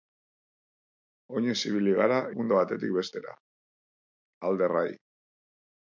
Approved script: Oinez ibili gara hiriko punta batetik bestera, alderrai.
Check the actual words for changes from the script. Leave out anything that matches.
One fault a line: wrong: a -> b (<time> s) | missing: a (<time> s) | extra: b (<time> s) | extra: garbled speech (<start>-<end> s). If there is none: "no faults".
missing: hiriko (2.2 s)